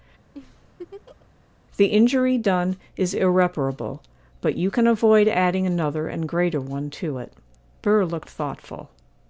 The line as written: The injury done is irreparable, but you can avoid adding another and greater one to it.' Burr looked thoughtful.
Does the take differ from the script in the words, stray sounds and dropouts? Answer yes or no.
yes